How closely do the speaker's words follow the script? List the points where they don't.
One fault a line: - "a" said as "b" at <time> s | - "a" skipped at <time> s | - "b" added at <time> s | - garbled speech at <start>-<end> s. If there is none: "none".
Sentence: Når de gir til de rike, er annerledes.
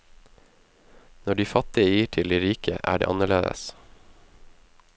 - "fattige" added at 1.4 s
- "det" added at 3.0 s